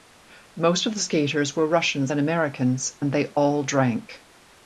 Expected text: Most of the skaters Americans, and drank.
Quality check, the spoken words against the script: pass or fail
fail